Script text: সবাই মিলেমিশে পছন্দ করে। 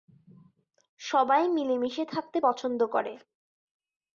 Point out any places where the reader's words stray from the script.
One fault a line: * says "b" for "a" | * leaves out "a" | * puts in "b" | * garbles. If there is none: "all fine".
* puts in "থাকতে"